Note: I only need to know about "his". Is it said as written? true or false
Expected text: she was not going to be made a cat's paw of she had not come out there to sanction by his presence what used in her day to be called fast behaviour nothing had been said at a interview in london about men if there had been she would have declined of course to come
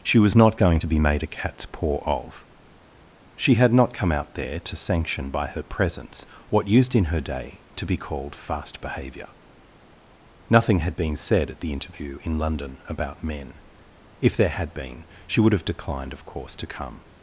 false